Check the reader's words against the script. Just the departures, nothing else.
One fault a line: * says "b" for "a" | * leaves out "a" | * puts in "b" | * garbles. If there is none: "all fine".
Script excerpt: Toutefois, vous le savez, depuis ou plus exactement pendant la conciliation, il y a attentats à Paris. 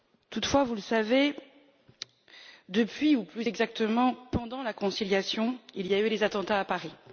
* puts in "eu les"